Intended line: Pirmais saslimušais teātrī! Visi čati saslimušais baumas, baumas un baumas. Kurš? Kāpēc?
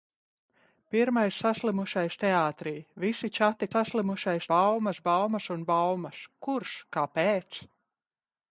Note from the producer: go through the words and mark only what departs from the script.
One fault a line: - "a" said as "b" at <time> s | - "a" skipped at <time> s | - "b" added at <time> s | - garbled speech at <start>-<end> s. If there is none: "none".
none